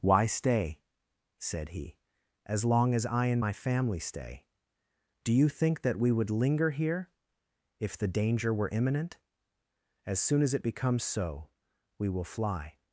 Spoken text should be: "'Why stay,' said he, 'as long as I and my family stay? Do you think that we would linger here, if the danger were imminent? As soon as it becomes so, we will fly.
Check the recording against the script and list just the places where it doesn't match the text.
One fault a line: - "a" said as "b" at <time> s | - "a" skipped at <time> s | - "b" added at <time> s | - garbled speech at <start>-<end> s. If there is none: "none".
none